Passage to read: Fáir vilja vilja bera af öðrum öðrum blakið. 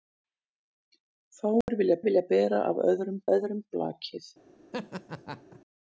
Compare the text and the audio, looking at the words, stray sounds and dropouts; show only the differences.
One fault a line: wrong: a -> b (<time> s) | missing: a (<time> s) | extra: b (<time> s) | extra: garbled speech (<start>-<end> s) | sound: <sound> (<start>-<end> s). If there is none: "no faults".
sound: dropout (1.6-1.7 s)
sound: laugh (4.7-5.6 s)